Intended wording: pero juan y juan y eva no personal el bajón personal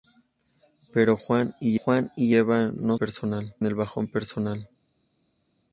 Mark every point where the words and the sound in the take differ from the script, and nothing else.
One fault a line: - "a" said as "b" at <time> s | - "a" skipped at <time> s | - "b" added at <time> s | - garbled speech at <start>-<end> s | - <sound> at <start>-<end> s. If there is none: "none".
none